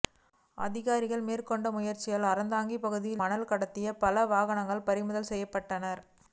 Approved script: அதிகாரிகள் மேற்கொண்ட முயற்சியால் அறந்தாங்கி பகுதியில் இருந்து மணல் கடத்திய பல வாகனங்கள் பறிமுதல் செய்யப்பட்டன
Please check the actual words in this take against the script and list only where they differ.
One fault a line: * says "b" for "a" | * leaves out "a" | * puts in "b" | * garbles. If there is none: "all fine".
* leaves out "இருந்து"